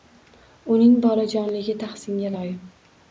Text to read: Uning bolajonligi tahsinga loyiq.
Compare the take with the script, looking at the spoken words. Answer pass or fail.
pass